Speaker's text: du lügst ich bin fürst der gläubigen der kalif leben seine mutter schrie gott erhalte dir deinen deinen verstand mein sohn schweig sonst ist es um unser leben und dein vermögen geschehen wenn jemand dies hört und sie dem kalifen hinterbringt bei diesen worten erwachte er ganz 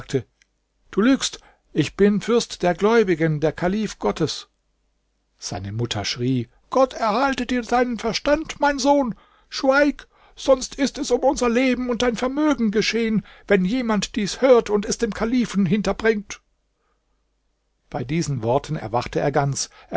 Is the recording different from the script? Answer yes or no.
yes